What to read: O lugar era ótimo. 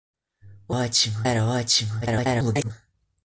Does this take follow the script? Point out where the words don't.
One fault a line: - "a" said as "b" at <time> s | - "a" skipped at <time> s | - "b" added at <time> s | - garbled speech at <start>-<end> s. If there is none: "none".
- "lugar" said as "ótimo" at 0.7 s
- garbled speech at 2.0-2.7 s